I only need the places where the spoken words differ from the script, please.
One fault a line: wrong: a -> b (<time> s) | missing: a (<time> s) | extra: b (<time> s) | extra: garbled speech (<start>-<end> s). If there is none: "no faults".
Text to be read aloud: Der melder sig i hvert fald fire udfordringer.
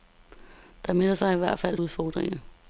missing: fire (1.8 s)